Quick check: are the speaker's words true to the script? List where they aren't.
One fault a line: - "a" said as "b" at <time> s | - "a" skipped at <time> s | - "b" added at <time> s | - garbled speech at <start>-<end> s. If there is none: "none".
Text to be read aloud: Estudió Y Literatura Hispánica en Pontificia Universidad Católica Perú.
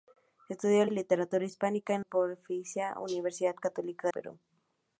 none